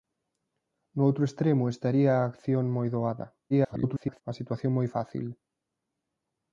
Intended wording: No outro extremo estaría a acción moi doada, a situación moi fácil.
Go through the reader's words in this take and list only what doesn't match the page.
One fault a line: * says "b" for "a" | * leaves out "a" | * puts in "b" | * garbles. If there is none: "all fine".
* garbles